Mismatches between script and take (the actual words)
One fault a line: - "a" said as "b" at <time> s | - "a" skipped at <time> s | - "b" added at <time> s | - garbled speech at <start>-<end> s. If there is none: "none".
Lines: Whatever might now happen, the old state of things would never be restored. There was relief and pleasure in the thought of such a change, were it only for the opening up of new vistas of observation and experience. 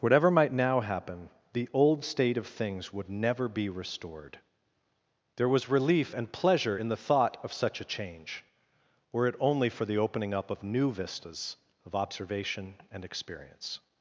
none